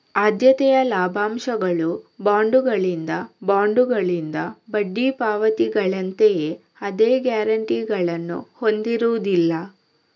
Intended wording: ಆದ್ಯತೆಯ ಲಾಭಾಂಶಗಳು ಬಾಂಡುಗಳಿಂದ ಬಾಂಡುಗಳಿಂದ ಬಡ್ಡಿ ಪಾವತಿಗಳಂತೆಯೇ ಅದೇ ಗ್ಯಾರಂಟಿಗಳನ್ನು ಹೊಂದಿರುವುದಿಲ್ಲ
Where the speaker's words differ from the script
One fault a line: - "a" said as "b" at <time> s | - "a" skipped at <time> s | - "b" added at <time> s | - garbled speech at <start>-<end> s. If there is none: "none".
none